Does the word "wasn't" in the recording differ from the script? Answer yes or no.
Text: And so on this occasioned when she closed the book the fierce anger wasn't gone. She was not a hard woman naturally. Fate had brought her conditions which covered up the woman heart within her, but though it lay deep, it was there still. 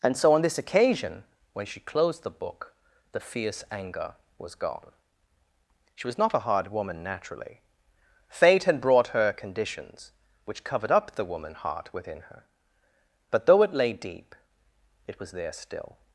yes